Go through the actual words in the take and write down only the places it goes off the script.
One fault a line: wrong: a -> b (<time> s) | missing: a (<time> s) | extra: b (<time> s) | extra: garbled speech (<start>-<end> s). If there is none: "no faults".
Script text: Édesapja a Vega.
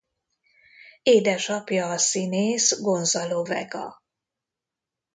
extra: színész Gonzalo (2.0 s)